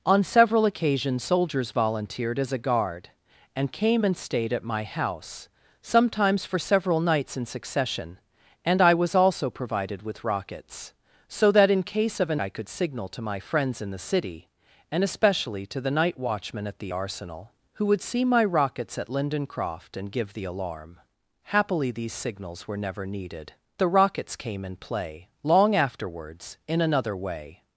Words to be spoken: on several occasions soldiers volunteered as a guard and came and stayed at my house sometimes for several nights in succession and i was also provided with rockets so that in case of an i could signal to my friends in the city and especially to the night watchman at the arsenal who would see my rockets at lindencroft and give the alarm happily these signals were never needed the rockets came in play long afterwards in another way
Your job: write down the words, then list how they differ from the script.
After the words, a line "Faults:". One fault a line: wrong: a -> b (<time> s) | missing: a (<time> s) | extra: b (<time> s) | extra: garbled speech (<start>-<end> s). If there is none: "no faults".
on several occasions soldiers volunteered as a guard and came and stayed at my house sometimes for several nights in succession and i was also provided with rockets so that in case of an i could signal to my friends in the city and especially to the night watchman at the arsenal who would see my rockets at lindencroft and give the alarm happily these signals were never needed the rockets came in play long afterwards in another way
Faults:
no faults